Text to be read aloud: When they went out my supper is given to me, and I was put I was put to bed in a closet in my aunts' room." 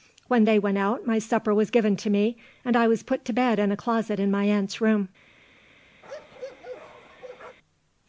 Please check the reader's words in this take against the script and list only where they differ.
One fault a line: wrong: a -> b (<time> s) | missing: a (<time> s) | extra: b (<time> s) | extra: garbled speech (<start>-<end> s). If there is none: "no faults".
wrong: is -> was (1.5 s)
missing: I was put (3.3 s)